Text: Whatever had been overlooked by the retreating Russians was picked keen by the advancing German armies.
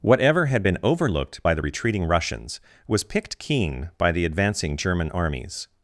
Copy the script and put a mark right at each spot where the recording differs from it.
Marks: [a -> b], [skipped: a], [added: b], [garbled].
Whatever had been overlooked by the retreating Russians was picked keen by the advancing German armies.